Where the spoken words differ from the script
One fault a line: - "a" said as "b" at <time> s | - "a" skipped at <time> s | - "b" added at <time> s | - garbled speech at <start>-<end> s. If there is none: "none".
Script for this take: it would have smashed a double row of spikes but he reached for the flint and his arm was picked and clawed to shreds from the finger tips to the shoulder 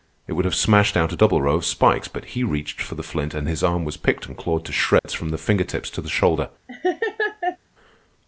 - "out" added at 1.0 s